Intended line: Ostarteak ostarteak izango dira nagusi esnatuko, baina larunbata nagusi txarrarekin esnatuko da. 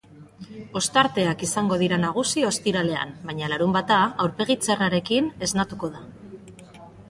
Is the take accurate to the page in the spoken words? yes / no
no